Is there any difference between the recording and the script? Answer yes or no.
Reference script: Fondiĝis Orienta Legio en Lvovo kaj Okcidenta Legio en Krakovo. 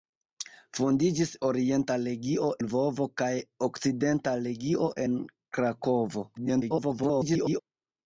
yes